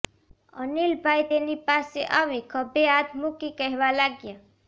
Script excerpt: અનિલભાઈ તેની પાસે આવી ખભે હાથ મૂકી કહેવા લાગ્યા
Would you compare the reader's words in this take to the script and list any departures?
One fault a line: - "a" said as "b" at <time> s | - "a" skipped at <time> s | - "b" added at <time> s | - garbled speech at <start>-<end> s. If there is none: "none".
none